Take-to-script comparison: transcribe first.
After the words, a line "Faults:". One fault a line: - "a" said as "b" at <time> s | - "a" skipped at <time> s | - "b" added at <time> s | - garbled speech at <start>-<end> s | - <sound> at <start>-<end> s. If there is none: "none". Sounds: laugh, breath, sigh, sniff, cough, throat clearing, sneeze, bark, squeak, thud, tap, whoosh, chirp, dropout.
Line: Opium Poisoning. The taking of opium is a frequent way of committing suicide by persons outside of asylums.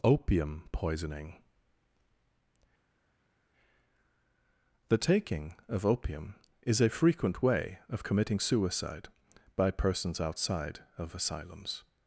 Opium Poisoning. The taking of opium is a frequent way of committing suicide by persons outside of asylums.
Faults:
none